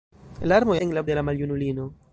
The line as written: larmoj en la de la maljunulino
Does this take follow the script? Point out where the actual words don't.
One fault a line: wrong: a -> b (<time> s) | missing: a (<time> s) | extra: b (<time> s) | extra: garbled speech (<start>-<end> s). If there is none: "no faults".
no faults